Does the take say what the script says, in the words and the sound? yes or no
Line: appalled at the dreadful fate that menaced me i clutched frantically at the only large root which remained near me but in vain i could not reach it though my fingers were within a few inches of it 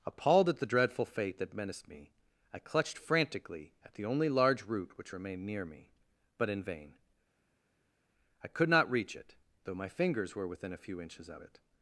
yes